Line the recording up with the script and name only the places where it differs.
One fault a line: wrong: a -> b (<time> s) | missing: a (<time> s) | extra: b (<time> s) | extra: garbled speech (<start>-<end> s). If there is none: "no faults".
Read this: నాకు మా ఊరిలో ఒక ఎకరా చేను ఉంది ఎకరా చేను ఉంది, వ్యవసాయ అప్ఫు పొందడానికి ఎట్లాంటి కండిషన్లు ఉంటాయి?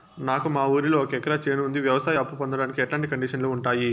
missing: ఎకరా చేను ఉంది (1.8 s)